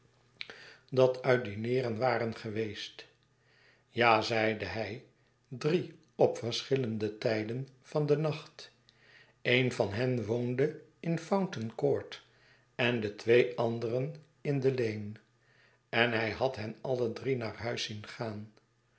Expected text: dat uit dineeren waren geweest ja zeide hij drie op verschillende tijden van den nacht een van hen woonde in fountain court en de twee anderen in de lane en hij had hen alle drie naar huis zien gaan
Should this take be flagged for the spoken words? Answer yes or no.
no